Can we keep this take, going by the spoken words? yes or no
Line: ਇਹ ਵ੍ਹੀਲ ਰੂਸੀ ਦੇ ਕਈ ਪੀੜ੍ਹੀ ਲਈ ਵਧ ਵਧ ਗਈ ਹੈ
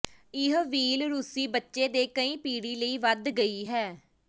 no